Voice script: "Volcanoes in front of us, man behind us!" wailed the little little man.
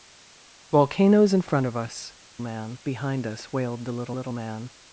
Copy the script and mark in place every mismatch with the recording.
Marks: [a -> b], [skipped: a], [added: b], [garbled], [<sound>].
"Volcanoes in front of us, man behind us!" wailed the little little man.